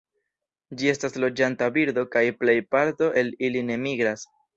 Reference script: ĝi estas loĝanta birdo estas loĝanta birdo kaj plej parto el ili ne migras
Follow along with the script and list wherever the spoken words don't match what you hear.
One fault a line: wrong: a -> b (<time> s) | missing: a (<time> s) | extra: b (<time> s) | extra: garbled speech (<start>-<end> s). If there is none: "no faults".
missing: estas loĝanta birdo (2.0 s)